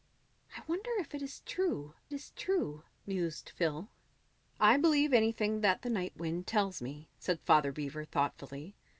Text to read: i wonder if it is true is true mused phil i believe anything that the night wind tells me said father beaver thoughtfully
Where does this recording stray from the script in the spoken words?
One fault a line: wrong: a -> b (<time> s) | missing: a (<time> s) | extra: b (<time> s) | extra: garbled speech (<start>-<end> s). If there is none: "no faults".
no faults